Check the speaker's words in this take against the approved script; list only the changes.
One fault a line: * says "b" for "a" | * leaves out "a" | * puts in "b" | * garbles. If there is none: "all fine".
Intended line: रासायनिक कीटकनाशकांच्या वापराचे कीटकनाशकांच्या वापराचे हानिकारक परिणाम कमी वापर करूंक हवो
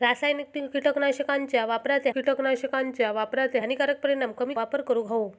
all fine